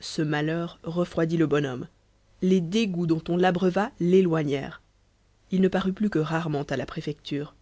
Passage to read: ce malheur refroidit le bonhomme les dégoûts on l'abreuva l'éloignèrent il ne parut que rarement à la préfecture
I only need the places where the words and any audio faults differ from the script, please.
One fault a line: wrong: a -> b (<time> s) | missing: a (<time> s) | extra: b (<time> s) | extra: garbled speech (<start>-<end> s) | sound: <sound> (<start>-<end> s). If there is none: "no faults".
extra: dont (3.1 s)
extra: plus (5.9 s)